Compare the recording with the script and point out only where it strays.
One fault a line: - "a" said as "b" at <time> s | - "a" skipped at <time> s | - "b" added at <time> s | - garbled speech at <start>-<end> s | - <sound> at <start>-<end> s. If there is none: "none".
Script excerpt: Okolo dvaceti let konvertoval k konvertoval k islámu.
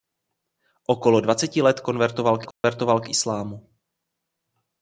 - dropout at 2.5-2.6 s